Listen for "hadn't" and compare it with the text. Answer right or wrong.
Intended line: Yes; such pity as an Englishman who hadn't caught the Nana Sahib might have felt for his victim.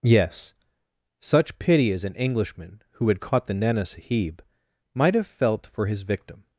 wrong